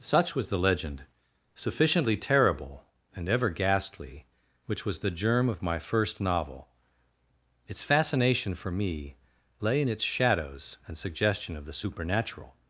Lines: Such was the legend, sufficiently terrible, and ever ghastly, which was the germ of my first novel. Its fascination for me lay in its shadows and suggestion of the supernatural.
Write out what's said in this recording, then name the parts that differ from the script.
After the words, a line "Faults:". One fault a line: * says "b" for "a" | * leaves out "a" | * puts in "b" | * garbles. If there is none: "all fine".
Such was the legend, sufficiently terrible, and ever ghastly, which was the germ of my first novel. Its fascination for me lay in its shadows and suggestion of the supernatural.
Faults:
all fine